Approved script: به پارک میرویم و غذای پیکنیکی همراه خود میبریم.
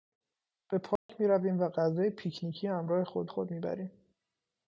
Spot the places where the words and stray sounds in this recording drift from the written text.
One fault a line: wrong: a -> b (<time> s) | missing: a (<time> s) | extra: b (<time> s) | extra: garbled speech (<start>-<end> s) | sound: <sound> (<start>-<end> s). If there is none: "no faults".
sound: dropout (1.0-1.1 s)
extra: خود (3.3 s)